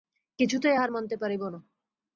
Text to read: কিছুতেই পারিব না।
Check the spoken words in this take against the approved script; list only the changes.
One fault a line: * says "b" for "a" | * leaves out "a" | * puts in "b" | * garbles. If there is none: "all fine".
* puts in "হার মানিতে"